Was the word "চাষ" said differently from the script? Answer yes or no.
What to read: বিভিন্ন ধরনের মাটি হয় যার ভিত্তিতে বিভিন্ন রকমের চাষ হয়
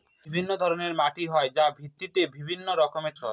yes